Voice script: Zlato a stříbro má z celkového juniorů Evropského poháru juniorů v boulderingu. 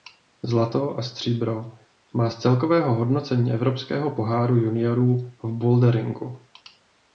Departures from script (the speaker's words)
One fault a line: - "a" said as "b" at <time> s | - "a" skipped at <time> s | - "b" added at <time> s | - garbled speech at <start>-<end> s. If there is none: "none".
- "juniorů" said as "hodnocení" at 2.9 s